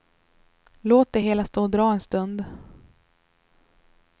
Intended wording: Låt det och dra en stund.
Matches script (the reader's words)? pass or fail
fail